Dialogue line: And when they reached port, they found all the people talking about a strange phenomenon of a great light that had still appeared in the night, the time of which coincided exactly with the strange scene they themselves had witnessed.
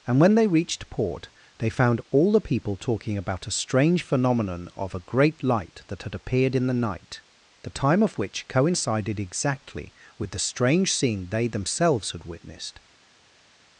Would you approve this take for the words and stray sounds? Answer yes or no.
no